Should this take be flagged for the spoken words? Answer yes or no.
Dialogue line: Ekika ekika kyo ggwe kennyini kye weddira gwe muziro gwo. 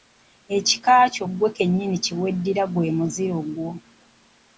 yes